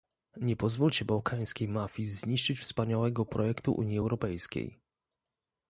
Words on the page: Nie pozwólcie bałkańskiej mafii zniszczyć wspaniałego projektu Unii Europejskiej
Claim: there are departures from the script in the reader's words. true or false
false